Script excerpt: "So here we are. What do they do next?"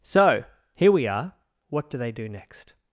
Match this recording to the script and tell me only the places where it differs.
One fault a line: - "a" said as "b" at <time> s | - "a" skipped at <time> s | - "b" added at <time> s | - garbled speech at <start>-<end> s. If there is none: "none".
none